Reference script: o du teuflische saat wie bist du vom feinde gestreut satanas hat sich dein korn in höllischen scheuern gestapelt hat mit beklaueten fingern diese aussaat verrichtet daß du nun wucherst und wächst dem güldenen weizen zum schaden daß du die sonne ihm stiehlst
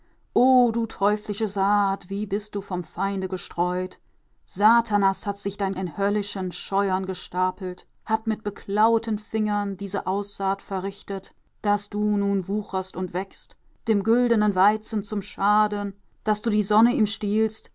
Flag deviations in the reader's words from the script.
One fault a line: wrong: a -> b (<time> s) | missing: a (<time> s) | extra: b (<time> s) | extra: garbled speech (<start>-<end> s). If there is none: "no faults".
missing: korn (5.8 s)